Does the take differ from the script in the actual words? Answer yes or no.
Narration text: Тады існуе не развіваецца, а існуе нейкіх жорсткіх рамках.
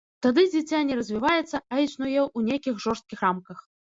yes